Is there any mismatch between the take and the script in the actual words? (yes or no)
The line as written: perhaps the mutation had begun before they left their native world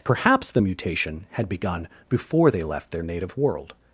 no